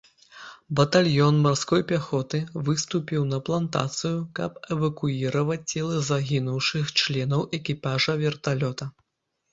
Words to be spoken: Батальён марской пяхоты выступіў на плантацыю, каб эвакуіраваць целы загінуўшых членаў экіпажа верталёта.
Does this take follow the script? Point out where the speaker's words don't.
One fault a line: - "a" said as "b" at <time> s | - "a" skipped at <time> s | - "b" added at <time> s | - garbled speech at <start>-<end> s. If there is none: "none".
none